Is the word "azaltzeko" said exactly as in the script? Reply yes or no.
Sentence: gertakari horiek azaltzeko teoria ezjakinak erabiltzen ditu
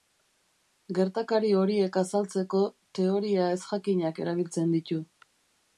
yes